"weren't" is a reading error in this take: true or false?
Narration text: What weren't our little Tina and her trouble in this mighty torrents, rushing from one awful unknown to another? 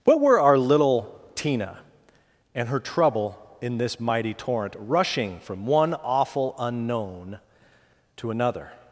true